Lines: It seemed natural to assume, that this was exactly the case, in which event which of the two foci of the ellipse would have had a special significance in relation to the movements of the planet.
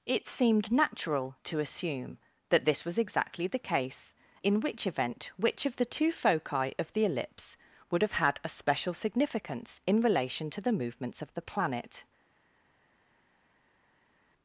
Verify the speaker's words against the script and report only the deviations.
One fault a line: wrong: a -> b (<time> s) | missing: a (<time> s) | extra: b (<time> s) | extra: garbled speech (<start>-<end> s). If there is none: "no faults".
no faults